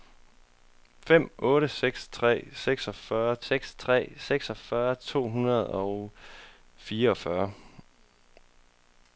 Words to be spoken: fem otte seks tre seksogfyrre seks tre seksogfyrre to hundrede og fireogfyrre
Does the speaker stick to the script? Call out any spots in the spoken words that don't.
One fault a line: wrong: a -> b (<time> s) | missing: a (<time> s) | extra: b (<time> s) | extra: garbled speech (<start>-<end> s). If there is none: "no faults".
no faults